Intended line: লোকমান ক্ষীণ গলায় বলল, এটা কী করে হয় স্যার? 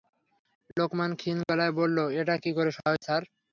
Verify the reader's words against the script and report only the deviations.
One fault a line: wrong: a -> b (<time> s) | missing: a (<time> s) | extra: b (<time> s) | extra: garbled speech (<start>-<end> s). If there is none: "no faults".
no faults